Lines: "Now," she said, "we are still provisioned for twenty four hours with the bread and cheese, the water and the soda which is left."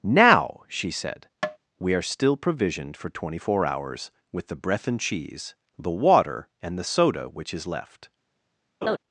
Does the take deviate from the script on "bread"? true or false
true